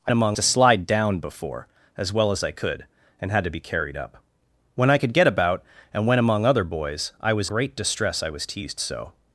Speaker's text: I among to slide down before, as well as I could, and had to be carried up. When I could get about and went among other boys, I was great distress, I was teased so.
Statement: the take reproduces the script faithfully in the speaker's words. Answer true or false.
true